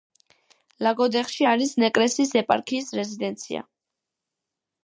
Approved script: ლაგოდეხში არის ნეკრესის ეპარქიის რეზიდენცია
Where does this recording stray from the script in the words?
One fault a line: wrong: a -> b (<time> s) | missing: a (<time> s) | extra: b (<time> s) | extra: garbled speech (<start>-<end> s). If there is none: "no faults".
no faults